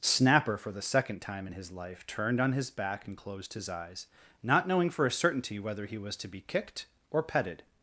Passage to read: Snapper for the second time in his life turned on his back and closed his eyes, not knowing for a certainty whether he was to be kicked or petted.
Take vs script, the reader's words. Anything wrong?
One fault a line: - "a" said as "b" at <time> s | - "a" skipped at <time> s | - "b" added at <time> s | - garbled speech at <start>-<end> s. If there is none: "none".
none